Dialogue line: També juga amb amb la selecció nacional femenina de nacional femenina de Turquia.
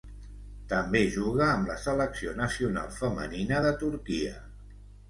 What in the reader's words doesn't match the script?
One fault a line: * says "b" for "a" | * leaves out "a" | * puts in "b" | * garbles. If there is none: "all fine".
* leaves out "amb"
* leaves out "nacional femenina de"